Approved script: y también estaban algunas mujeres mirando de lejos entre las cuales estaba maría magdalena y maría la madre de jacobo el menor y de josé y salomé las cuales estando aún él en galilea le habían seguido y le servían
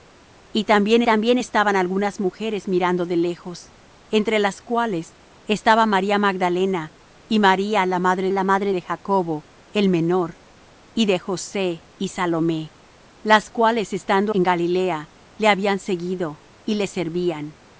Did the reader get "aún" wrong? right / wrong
wrong